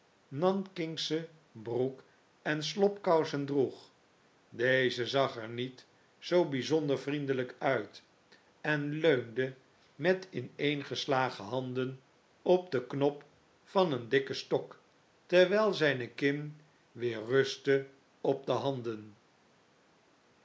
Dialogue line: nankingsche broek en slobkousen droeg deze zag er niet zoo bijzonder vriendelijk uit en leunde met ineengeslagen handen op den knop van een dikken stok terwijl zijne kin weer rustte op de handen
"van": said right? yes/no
yes